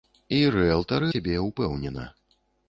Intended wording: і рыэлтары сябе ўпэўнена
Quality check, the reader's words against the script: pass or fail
pass